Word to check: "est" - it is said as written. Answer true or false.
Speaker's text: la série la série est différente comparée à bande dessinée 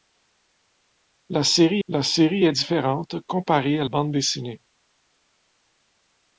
true